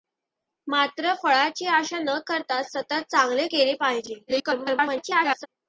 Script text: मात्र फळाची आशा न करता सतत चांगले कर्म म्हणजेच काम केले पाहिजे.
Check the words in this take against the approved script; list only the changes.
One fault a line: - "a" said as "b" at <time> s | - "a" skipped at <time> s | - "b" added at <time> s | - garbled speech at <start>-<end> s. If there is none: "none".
- "कर्म म्हणजेच काम" skipped at 3.5 s
- garbled speech at 4.3-5.5 s